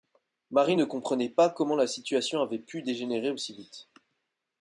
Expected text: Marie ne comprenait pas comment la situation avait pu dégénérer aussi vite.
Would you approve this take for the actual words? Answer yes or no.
yes